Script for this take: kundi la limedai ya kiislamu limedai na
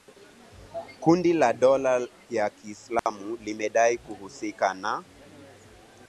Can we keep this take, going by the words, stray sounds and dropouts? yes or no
no